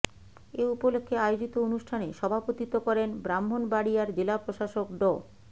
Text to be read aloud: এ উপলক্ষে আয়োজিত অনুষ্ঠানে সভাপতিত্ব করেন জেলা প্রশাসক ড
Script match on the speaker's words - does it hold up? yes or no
no